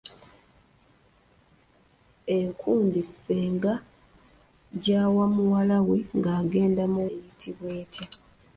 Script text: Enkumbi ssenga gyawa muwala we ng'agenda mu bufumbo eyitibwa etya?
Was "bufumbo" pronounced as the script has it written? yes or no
no